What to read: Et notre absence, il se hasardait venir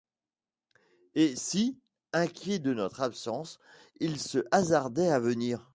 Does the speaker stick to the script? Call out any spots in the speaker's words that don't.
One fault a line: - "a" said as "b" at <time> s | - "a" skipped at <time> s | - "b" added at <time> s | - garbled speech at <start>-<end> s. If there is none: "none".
- "si inquiet de" added at 1.4 s
- "à" added at 5.1 s